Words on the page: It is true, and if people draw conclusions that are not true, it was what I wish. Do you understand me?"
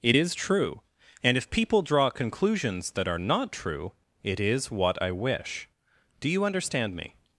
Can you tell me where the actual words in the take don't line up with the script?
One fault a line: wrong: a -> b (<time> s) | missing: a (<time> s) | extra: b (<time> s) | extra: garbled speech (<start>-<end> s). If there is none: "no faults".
wrong: was -> is (4.4 s)